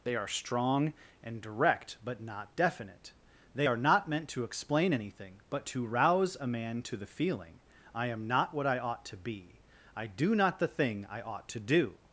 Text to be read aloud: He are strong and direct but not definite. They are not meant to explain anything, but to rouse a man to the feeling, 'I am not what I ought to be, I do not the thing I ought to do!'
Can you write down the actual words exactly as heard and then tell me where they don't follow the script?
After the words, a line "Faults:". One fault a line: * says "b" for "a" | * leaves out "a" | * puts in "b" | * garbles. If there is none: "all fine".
They are strong and direct but not definite. They are not meant to explain anything, but to rouse a man to the feeling, 'I am not what I ought to be, I do not the thing I ought to do!'
Faults:
* says "They" for "He"